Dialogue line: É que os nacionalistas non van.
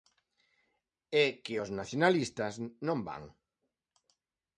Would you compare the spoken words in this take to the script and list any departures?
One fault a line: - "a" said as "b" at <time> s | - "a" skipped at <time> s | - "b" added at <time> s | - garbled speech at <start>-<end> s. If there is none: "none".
none